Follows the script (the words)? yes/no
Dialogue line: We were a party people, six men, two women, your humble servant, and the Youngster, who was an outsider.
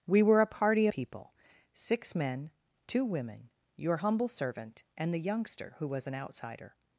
yes